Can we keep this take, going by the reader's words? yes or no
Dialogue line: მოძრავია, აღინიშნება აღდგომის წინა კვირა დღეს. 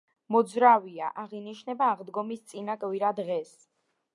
yes